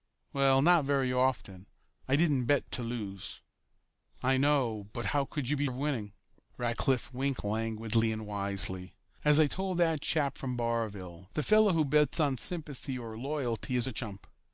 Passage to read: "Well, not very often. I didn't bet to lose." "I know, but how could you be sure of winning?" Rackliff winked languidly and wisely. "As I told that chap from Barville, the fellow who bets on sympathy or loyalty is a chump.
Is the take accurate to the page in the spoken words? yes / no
no